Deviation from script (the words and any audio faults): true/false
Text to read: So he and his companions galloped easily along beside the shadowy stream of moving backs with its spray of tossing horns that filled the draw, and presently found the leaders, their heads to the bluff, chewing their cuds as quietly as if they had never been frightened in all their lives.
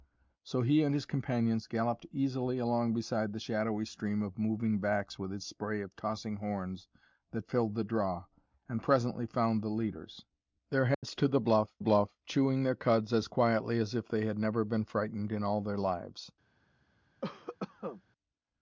true